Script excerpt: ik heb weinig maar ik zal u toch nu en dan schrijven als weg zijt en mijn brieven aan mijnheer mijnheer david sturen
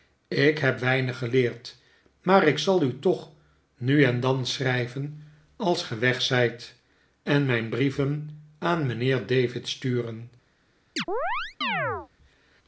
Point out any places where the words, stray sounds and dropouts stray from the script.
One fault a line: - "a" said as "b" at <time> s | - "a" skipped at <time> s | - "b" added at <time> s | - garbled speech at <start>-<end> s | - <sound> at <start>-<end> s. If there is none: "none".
- "geleerd" added at 1.2 s
- "ge" added at 5.8 s
- "mijnheer" skipped at 9.2 s
- chirp at 11.0-12.1 s